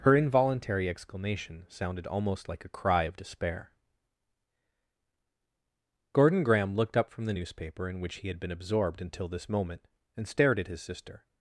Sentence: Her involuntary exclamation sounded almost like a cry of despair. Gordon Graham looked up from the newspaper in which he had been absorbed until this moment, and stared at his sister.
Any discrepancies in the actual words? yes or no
no